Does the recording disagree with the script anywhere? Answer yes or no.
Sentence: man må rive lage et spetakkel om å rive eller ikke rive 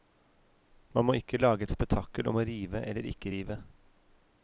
yes